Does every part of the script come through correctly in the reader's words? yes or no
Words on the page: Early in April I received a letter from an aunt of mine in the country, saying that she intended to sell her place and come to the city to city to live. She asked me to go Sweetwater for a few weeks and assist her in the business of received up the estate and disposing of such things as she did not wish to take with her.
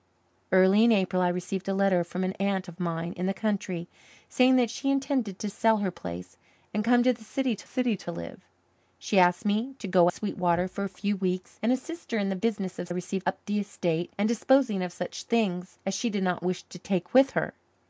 yes